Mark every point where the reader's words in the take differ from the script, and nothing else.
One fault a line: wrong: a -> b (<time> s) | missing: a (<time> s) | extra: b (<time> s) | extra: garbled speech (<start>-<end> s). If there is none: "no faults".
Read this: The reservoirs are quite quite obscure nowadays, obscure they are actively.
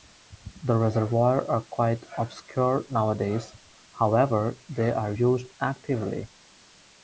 missing: quite (2.0 s)
wrong: obscure -> however (4.0 s)
extra: used (5.1 s)